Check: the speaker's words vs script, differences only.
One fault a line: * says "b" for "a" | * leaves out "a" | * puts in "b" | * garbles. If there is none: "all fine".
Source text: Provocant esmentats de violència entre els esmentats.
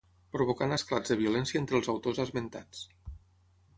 * says "esclats" for "esmentats"
* puts in "autors"